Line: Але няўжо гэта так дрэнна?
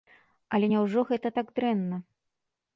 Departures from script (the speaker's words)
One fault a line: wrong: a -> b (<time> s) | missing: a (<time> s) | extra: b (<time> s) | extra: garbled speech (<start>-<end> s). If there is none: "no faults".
no faults